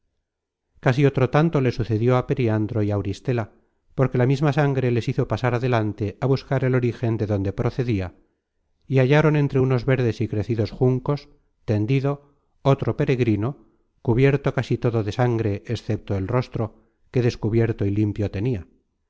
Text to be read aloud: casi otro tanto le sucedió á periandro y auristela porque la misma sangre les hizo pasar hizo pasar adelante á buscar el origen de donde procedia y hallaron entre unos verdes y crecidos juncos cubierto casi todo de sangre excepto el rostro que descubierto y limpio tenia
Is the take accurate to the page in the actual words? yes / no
no